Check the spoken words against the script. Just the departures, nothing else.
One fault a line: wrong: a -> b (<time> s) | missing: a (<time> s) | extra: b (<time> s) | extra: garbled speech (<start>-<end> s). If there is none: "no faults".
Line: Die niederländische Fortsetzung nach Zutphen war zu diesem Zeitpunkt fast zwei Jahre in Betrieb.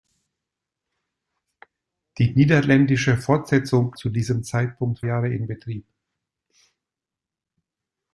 missing: nach Zutphen war (3.9 s)
missing: fast zwei (5.0 s)